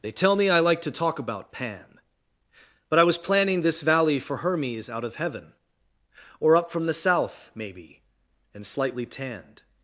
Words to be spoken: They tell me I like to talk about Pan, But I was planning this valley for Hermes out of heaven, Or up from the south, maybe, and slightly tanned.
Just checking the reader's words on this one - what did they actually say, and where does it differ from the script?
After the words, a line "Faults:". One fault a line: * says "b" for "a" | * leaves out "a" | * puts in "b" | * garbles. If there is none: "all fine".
They tell me I like to talk about Pan, But I was planning this valley for Hermes out of heaven, Or up from the south, maybe, and slightly tanned.
Faults:
all fine